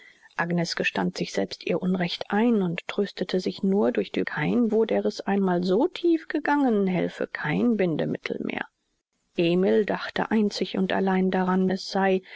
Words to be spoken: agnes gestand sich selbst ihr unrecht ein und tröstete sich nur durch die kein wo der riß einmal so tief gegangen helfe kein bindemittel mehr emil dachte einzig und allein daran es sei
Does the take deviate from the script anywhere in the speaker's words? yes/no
no